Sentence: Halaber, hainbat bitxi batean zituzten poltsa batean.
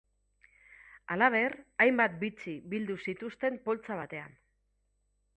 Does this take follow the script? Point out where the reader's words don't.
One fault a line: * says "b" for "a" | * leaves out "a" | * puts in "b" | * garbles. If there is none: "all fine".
* says "bildu" for "batean"